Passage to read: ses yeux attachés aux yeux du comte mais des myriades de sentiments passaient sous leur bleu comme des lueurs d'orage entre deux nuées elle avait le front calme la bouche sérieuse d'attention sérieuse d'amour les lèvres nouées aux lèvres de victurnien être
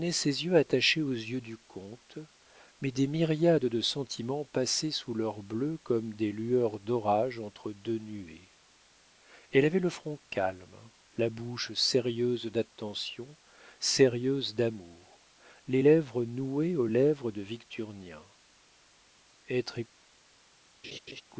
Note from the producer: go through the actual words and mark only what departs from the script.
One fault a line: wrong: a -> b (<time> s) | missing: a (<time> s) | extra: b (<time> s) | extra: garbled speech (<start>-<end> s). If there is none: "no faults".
no faults